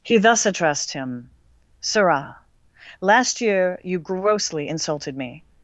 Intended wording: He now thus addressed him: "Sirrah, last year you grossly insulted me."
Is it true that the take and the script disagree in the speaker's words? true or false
true